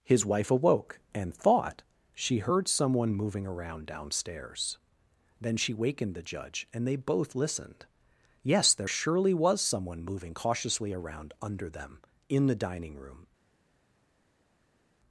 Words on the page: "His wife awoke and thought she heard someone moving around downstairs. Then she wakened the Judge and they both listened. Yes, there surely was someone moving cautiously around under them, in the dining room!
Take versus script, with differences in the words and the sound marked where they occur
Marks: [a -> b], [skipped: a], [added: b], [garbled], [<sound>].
"His wife awoke and thought she heard someone moving around downstairs. Then she wakened the Judge and they both listened. Yes, there surely was someone moving cautiously around under them, in the dining room!